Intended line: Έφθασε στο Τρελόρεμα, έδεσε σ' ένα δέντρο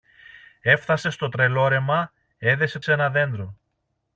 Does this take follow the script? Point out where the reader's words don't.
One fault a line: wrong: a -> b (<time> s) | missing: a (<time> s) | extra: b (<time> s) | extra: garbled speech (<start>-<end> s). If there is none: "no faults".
no faults